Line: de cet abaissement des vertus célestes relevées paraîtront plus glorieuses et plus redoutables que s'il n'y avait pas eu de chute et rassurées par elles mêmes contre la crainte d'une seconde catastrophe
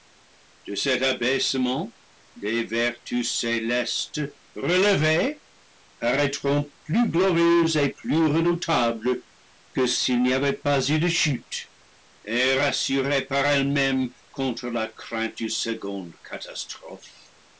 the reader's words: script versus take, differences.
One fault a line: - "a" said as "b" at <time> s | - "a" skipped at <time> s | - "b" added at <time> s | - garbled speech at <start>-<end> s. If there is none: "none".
none